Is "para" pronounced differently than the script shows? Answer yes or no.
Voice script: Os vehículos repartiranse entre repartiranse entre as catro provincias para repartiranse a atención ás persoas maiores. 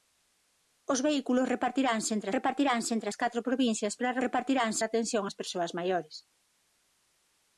no